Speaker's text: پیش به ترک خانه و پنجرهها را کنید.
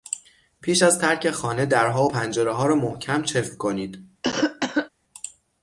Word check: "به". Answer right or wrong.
wrong